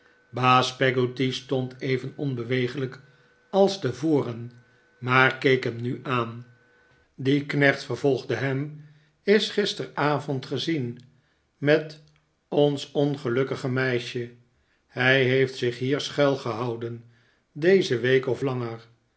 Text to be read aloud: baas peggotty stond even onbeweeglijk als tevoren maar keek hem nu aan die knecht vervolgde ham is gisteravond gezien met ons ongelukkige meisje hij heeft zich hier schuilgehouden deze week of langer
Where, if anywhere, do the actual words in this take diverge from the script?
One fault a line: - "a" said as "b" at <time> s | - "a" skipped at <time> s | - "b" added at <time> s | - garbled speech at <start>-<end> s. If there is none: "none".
none